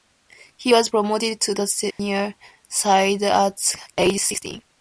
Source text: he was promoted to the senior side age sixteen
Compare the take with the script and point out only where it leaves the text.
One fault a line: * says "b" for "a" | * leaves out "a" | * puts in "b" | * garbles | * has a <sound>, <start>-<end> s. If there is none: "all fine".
* has a dropout, 1.9-2.0 s
* puts in "at"